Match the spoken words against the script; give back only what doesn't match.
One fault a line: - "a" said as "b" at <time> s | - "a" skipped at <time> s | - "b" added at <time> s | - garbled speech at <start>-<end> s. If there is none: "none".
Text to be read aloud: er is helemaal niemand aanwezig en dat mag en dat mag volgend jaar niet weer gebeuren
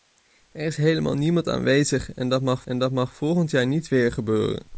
none